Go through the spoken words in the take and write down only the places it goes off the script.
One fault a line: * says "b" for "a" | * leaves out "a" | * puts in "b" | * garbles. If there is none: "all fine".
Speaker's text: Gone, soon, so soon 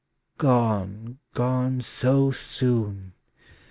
* says "gone" for "soon"